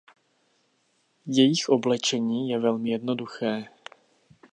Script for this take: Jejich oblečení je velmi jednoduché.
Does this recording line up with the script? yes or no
yes